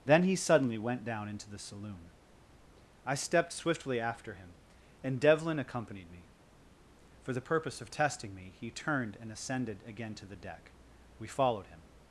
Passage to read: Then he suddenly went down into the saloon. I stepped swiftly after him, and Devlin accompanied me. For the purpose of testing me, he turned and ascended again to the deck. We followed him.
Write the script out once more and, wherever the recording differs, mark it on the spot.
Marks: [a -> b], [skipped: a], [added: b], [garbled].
Then he suddenly went down into the saloon. I stepped swiftly after him, and Devlin accompanied me. For the purpose of testing me, he turned and ascended again to the deck. We followed him.